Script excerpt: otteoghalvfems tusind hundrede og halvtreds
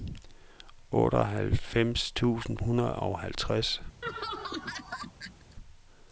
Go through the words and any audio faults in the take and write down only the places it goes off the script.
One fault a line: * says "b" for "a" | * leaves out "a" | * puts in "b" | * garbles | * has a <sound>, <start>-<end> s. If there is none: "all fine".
* has a laugh, 4.0-5.6 s